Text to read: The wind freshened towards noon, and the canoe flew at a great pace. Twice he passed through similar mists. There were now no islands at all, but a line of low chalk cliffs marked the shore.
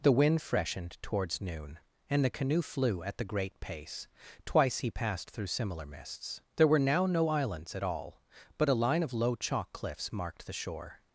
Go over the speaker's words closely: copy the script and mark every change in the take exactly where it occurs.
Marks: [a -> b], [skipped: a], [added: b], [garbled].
The wind freshened towards noon, and the canoe flew at [a -> the] great pace. Twice he passed through similar mists. There were now no islands at all, but a line of low chalk cliffs marked the shore.